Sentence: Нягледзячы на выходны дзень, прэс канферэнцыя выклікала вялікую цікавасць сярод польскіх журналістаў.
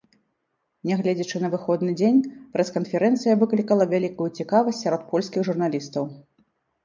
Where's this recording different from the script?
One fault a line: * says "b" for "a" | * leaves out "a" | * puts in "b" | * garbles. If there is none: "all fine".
all fine